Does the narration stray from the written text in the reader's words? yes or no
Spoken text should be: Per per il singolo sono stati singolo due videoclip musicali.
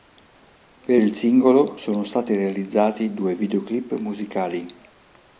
yes